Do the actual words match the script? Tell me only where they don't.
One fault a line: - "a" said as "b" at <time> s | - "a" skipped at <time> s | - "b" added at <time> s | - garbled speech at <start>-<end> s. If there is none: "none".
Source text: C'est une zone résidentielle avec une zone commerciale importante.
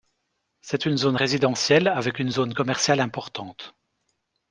none